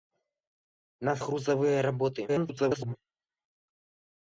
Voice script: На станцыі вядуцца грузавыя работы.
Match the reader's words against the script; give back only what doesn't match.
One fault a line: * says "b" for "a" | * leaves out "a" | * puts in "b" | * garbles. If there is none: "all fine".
* leaves out "станцыі вядуцца"
* garbles